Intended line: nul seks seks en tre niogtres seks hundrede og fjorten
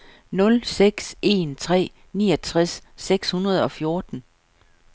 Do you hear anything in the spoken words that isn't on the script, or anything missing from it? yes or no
yes